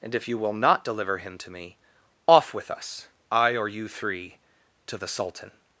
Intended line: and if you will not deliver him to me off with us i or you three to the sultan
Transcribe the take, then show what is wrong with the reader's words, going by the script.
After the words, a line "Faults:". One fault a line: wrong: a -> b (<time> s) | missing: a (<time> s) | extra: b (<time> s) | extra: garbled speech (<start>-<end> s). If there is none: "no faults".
and if you will not deliver him to me off with us i or you three to the sultan
Faults:
no faults